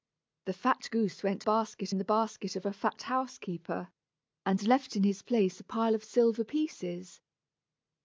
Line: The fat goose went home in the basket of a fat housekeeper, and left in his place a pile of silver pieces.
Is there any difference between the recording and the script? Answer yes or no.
yes